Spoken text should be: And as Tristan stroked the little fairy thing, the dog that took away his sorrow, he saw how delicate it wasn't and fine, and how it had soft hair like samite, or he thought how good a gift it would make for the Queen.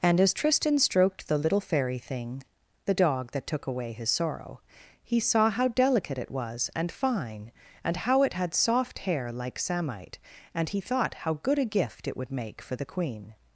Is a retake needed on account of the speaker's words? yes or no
yes